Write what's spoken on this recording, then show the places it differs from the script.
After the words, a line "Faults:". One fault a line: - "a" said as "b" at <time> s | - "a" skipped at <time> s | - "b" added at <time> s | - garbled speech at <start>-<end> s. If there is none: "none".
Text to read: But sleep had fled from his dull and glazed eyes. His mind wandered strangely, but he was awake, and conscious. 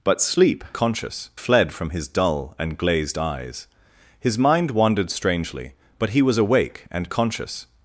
But sleep conscious fled from his dull and glazed eyes. His mind wandered strangely, but he was awake, and conscious.
Faults:
- "had" said as "conscious" at 0.7 s